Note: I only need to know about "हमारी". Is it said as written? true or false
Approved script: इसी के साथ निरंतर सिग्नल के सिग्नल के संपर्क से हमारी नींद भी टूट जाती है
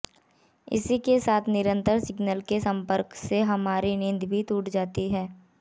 true